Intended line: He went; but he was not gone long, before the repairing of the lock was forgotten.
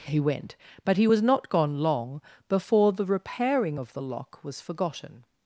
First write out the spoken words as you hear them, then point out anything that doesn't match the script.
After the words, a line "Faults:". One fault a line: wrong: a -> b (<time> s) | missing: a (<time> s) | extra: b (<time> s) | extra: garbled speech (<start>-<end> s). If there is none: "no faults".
He went; but he was not gone long, before the repairing of the lock was forgotten.
Faults:
no faults